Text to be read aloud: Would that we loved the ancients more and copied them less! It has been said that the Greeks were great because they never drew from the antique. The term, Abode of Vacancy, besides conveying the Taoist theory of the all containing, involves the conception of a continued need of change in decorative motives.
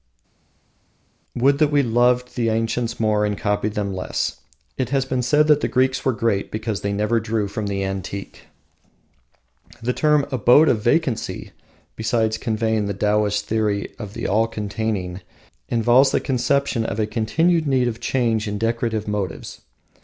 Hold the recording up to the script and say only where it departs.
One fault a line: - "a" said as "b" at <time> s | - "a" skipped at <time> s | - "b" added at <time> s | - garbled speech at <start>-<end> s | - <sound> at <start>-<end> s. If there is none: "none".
none